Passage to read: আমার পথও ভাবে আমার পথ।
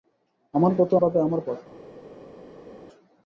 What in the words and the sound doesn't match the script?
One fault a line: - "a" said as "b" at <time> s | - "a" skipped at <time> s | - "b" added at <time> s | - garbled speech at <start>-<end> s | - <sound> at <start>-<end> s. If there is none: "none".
none